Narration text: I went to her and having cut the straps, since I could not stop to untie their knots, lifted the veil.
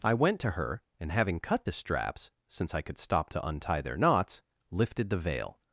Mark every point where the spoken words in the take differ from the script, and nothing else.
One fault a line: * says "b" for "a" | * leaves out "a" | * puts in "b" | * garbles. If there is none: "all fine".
* leaves out "not"